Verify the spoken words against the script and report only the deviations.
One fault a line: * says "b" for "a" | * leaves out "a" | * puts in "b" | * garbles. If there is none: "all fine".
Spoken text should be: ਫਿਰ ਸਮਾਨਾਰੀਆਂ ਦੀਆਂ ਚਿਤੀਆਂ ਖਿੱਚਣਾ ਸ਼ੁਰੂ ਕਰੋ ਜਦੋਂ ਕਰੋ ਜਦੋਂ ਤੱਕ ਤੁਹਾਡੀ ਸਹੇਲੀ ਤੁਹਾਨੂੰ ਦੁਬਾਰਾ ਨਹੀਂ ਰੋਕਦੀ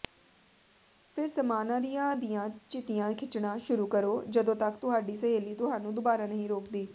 * leaves out "ਕਰੋ ਜਦੋਂ"